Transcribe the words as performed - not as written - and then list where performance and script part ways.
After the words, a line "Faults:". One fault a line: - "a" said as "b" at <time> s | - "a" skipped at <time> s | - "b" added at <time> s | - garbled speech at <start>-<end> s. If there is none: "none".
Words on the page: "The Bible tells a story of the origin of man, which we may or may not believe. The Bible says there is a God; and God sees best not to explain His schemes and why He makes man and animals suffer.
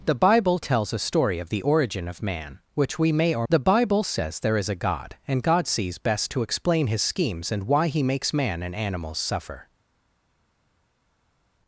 "The Bible tells a story of the origin of man, which we may or. The Bible says there is a God; and God sees best to explain His schemes and why He makes man and animals suffer.
Faults:
- "may not believe" skipped at 3.5 s
- "not" skipped at 6.3 s